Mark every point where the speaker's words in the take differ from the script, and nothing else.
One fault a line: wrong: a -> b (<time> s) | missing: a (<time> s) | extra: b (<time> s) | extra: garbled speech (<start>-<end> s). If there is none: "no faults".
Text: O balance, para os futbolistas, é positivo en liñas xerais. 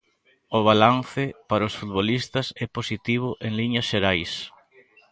no faults